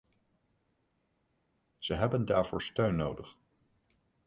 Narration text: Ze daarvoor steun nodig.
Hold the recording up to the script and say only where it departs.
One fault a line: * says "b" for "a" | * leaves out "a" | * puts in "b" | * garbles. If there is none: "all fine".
* puts in "hebben"